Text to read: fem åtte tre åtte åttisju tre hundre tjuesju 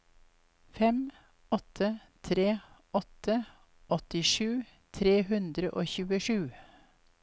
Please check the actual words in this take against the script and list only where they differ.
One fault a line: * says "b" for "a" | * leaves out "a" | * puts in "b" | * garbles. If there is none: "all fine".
* puts in "og"